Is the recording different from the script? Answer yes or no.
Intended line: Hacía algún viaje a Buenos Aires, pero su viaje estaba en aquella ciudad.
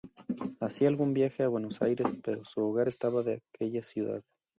yes